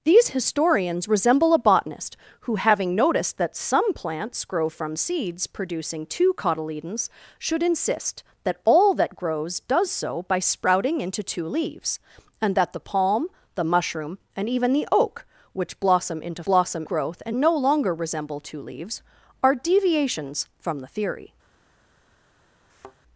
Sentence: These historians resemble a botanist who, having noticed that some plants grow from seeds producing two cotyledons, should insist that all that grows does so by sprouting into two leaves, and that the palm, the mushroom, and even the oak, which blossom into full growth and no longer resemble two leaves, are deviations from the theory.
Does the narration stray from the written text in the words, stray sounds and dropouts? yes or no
yes